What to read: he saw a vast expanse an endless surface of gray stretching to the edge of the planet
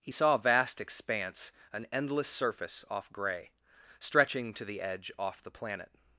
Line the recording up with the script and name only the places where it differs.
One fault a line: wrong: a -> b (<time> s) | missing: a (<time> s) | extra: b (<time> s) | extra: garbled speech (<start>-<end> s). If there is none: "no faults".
wrong: of -> off (2.9 s)
wrong: of -> off (5.2 s)